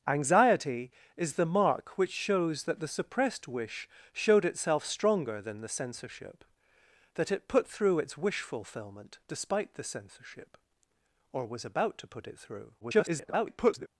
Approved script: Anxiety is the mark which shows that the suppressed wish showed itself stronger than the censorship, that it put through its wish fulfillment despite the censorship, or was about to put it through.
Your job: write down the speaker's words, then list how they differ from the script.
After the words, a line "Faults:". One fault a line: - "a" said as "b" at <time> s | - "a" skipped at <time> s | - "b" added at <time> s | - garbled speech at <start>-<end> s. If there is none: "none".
Anxiety is the mark which shows that the suppressed wish showed itself stronger than the censorship, that it put through its wish fulfillment despite the censorship, or was about to put it through. [garbled]
Faults:
- garbled speech at 12.8-13.9 s